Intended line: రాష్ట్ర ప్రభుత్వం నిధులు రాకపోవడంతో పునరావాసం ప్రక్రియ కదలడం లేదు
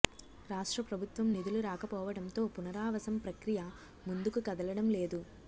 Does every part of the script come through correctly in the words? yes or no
no